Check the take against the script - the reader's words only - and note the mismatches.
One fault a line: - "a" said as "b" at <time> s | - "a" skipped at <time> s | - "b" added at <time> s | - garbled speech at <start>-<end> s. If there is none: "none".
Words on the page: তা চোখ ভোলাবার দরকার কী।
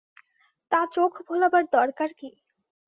none